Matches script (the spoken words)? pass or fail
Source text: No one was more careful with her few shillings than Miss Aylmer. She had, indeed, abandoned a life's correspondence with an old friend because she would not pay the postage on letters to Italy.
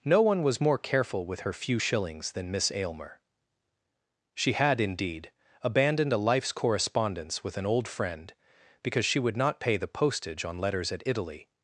fail